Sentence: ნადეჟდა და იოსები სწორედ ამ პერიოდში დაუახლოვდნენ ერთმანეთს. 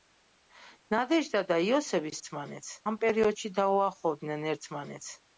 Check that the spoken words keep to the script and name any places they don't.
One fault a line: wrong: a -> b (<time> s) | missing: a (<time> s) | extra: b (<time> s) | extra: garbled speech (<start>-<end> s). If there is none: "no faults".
wrong: სწორედ -> ერთმანეთს (2.2 s)